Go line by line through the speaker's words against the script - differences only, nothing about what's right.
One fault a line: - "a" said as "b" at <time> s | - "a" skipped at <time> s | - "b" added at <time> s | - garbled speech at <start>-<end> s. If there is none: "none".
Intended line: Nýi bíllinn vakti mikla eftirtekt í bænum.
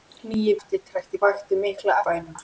- "bíllinn" said as "eftirtekt" at 0.6 s
- "eftirtekt" skipped at 2.0 s